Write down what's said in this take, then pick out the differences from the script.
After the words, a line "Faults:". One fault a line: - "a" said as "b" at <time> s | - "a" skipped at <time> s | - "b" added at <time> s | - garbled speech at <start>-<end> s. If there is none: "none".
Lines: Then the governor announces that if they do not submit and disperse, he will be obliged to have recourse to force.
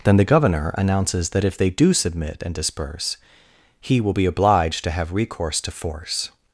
Then the governor announces that if they do submit and disperse, he will be obliged to have recourse to force.
Faults:
- "not" skipped at 1.9 s